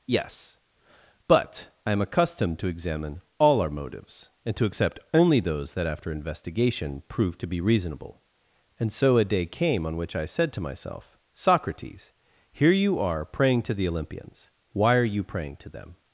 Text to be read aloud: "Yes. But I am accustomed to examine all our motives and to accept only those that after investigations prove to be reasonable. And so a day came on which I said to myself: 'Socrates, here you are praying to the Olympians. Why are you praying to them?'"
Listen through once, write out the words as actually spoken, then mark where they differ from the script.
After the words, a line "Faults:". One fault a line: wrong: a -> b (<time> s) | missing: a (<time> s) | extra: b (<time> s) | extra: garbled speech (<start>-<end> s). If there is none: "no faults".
"Yes. But I am accustomed to examine all our motives and to accept only those that after investigation prove to be reasonable. And so a day came on which I said to myself: 'Socrates, here you are praying to the Olympians. Why are you praying to them?'"
Faults:
wrong: investigations -> investigation (6.1 s)